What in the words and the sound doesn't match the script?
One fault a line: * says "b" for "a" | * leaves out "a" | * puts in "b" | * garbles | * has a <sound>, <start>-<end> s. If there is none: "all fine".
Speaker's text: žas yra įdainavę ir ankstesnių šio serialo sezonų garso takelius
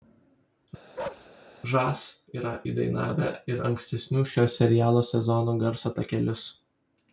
* has a bark, 1.0-1.3 s